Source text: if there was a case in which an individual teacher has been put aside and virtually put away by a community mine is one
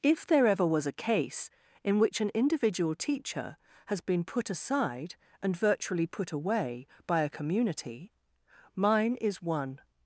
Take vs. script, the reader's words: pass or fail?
fail